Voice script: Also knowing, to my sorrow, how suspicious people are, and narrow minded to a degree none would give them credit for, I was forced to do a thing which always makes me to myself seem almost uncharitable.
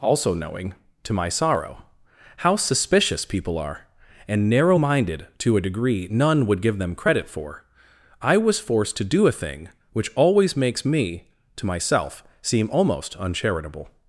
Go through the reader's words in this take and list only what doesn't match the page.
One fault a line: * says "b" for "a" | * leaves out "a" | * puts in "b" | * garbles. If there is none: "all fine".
all fine